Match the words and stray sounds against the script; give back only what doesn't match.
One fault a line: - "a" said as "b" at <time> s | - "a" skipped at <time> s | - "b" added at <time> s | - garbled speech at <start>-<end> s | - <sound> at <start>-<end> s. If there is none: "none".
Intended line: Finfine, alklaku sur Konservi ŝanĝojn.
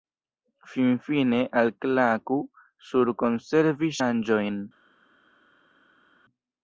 none